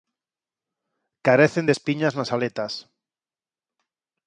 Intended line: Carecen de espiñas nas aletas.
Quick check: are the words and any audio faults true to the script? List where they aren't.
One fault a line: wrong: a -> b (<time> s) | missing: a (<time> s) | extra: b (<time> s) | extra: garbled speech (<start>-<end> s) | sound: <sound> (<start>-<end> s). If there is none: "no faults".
no faults